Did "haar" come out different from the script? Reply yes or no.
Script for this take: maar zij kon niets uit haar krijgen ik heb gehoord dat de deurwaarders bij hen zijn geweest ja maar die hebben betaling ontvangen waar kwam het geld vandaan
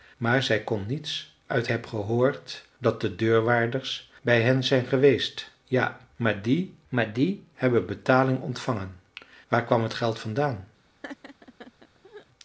yes